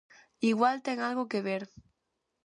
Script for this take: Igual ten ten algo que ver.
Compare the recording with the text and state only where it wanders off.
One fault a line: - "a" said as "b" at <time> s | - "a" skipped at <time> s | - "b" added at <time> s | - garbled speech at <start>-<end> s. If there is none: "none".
- "ten" skipped at 1.0 s